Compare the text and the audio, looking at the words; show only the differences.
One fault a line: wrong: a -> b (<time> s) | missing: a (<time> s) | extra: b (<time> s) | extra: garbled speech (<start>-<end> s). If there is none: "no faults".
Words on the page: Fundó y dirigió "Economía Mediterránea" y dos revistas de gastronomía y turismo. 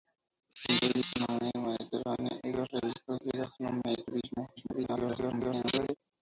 missing: dirigió (1.0 s)
extra: garbled speech (4.6-6.0 s)